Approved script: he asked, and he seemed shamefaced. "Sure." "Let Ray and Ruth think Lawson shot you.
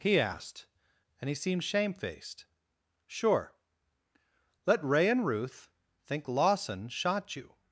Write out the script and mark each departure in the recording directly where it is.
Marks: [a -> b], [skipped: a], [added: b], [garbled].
he asked, and he seemed shamefaced. "Sure." "Let Ray and Ruth think Lawson shot you.